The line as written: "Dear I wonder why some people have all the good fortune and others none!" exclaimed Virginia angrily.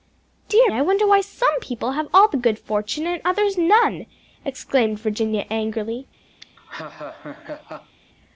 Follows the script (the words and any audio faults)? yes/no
no